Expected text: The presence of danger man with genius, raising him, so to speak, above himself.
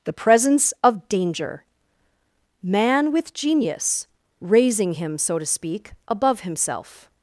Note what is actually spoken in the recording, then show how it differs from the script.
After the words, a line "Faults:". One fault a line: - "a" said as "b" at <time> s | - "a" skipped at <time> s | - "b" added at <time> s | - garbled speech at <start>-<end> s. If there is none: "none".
The presence of danger man with genius, raising him, so to speak, above himself.
Faults:
none